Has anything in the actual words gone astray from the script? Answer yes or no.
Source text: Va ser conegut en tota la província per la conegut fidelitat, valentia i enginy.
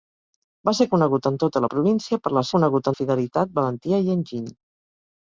no